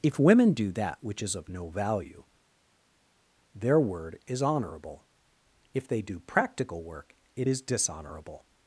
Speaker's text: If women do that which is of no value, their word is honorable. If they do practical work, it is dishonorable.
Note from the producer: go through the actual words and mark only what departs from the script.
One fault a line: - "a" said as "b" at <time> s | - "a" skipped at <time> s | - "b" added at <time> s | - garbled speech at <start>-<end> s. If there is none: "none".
none